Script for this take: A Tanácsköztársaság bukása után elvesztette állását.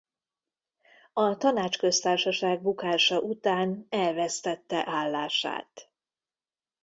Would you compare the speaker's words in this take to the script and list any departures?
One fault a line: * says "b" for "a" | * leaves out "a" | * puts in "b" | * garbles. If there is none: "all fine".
all fine